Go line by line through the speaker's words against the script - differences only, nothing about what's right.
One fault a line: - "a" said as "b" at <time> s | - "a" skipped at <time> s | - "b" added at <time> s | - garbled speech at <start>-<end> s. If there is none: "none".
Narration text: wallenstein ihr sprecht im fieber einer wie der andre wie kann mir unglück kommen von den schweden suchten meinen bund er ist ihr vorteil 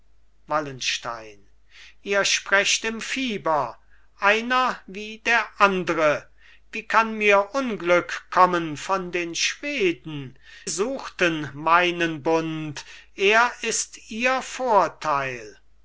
none